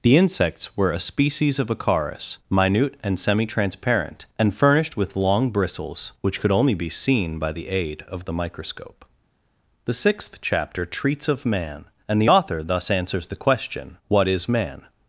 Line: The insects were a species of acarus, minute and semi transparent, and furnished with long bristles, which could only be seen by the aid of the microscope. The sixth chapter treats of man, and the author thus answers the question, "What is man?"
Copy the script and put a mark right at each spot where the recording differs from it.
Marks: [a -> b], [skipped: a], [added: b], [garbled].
The insects were a species of acarus, minute and semi transparent, and furnished with long bristles, which could only be seen by the aid of the microscope. The sixth chapter treats of man, and the author thus answers the question, "What is man?"